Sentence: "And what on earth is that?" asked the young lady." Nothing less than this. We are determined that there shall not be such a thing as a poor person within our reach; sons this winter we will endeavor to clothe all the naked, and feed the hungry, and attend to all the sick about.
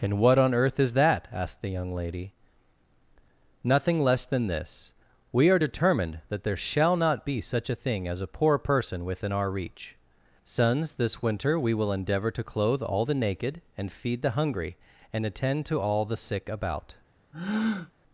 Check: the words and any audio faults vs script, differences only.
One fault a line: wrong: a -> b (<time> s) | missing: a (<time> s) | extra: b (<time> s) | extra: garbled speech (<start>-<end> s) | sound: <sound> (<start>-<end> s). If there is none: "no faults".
sound: breath (17.3-17.9 s)